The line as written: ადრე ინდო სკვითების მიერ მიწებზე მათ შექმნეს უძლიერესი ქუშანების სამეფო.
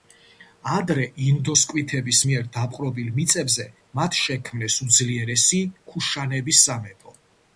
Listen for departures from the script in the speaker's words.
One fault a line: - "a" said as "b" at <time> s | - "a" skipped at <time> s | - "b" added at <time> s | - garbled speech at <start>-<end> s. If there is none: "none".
- "დაპყრობილ" added at 2.6 s